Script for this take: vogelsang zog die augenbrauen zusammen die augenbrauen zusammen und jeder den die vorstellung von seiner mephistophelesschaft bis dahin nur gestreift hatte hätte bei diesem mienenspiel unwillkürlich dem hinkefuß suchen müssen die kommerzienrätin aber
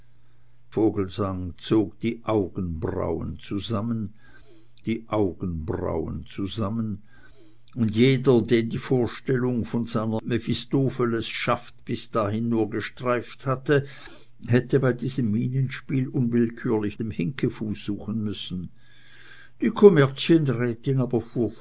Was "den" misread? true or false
false